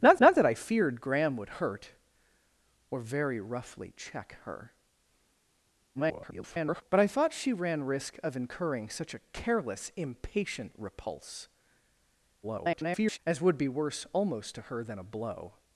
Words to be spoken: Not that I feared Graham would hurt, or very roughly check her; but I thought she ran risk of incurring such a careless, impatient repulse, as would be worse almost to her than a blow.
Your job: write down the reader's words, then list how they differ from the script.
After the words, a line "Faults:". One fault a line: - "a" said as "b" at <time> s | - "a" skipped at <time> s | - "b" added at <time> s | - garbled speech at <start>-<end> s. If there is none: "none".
Not not that I feared Graham would hurt, or very roughly check her; [garbled] but I thought she ran risk of incurring such a careless, impatient repulse, [garbled] as would be worse almost to her than a blow.
Faults:
- "not" added at 0.2 s
- garbled speech at 5.9-6.8 s
- garbled speech at 12.4-13.2 s